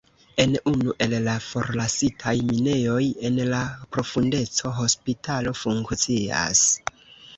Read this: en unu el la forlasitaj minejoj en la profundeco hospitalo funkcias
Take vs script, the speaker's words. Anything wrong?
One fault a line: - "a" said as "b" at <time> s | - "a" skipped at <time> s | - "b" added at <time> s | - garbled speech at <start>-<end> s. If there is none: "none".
none